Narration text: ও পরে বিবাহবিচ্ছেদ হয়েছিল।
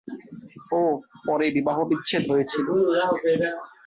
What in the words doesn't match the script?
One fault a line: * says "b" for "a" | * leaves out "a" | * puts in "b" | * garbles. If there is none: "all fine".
all fine